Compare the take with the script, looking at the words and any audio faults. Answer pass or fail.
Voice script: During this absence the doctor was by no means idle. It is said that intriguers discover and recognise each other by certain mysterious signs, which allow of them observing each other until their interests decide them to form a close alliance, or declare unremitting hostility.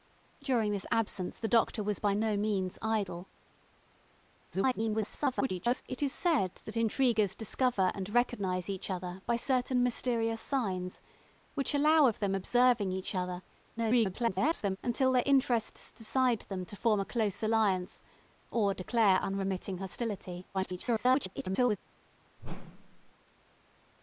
fail